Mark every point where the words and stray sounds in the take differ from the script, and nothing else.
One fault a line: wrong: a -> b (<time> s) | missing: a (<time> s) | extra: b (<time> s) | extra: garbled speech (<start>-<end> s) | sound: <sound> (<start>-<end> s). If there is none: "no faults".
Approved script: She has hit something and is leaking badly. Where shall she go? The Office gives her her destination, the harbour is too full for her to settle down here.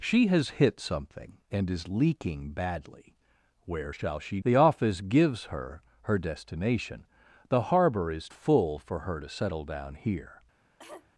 missing: go (4.4 s)
missing: too (8.3 s)
sound: cough (10.8-11.1 s)